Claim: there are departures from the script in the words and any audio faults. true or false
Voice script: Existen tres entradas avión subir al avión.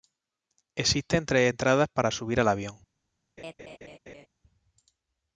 true